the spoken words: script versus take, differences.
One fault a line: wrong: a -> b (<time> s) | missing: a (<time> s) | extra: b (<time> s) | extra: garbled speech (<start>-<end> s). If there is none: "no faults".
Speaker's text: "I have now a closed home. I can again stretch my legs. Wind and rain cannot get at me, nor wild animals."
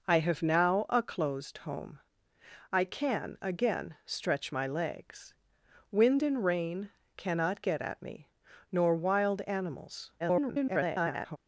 extra: garbled speech (10.2-11.4 s)